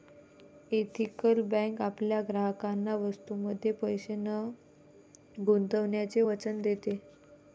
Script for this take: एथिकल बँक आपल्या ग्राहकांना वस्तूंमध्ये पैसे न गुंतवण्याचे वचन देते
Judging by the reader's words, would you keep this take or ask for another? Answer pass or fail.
pass